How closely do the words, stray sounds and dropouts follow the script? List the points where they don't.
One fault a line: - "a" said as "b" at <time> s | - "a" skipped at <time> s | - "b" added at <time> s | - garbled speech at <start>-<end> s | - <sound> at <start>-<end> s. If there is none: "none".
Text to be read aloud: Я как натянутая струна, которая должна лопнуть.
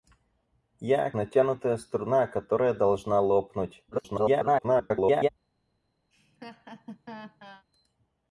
- "как" skipped at 1.1 s
- garbled speech at 3.9-5.3 s
- laugh at 6.1-7.6 s